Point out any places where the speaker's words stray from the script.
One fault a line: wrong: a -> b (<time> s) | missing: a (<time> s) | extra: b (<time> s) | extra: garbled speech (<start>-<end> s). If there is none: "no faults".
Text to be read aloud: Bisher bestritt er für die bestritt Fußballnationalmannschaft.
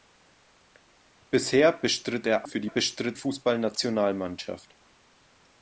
no faults